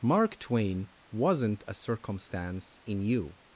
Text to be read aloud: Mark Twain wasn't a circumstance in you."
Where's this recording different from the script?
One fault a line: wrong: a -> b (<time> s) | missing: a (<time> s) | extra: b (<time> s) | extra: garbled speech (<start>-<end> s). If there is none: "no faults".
no faults